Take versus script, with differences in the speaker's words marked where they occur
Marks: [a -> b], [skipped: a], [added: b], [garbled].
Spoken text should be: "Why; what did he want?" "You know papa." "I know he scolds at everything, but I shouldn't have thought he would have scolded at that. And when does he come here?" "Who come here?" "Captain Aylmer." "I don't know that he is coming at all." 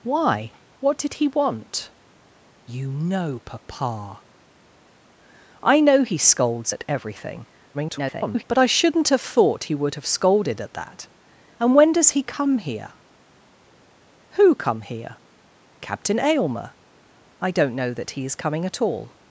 "Why; what did he want?" "You know papa." "I know he scolds at everything, [garbled] but I shouldn't have thought he would have scolded at that. And when does he come here?" "Who come here?" "Captain Aylmer." "I don't know that he is coming at all."